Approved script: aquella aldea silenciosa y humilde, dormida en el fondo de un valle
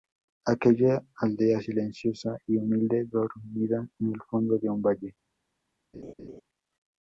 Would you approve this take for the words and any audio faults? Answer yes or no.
no